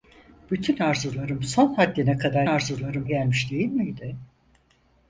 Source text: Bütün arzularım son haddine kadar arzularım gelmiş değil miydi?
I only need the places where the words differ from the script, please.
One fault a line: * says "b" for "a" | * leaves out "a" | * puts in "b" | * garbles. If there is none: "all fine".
all fine